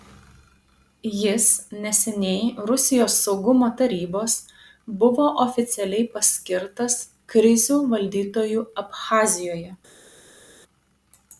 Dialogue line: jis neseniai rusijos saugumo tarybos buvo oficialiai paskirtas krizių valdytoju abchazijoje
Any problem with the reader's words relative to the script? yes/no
no